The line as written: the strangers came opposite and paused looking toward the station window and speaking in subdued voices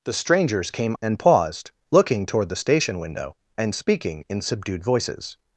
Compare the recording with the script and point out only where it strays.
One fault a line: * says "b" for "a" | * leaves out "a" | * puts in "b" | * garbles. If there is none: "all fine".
* leaves out "opposite"